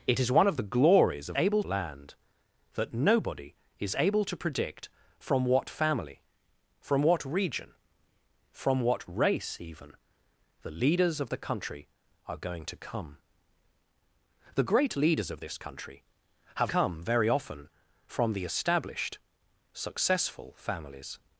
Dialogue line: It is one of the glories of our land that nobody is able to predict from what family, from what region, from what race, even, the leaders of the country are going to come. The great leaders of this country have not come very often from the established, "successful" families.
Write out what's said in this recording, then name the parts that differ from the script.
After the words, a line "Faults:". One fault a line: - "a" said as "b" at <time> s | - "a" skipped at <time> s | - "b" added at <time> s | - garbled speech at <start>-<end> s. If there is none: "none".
It is one of the glories of able land that nobody is able to predict from what family, from what region, from what race, even, the leaders of the country are going to come. The great leaders of this country have come very often from the established, "successful" families.
Faults:
- "our" said as "able" at 1.4 s
- "not" skipped at 16.7 s